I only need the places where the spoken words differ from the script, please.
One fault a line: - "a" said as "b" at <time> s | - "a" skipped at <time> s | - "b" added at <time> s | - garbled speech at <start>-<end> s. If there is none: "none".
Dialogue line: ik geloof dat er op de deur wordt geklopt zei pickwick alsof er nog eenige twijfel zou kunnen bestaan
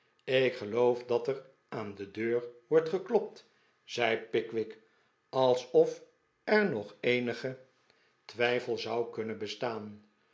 - "op" said as "aan" at 1.7 s